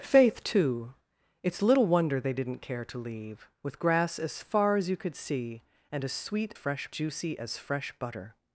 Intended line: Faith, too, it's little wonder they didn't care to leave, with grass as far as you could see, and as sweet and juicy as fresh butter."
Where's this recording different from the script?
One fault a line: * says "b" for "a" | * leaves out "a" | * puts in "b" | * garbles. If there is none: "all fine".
* says "fresh" for "and"